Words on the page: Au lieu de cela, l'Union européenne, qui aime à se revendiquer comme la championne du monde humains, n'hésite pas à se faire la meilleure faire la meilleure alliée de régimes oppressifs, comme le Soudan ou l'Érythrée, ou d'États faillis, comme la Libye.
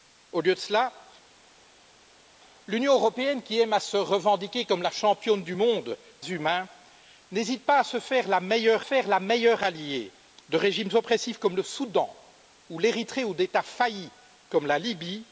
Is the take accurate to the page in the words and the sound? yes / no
yes